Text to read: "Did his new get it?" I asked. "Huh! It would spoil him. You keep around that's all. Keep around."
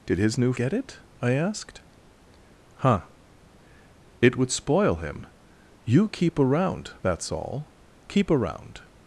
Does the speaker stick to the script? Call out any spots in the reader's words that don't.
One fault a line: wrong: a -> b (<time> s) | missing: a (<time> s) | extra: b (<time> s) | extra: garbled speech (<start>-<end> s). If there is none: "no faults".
no faults